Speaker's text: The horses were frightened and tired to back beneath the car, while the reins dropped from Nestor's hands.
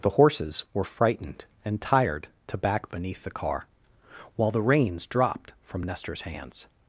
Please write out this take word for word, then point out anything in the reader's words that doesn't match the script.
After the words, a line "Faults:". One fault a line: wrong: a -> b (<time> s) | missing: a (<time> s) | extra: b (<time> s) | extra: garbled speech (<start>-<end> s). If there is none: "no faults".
The horses were frightened and tired to back beneath the car, while the reins dropped from Nestor's hands.
Faults:
no faults